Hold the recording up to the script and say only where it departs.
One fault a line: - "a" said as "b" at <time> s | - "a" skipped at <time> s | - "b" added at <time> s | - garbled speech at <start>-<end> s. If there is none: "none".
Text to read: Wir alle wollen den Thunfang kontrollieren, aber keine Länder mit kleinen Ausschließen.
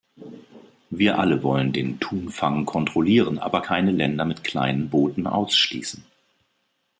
- "Booten" added at 4.9 s